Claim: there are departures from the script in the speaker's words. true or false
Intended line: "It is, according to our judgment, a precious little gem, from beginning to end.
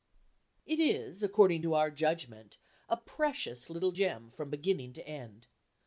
false